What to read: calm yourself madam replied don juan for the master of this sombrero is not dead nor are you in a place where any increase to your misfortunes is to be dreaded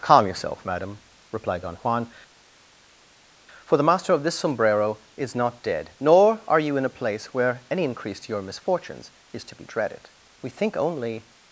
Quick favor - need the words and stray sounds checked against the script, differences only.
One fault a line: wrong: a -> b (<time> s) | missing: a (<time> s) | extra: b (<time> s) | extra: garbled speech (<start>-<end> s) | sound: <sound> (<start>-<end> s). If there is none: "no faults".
extra: we think only (10.4 s)